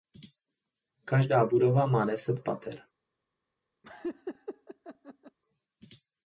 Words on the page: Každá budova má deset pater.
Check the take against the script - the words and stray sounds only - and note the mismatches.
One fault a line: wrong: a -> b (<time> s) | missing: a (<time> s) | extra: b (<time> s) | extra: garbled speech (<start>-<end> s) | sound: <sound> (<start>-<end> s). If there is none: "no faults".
sound: laugh (3.8-5.4 s)